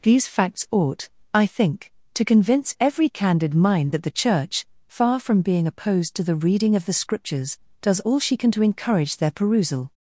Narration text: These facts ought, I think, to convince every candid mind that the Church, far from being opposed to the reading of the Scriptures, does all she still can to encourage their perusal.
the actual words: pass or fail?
fail